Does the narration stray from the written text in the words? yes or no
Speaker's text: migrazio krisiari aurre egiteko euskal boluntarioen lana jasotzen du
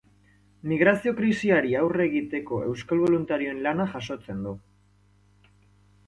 no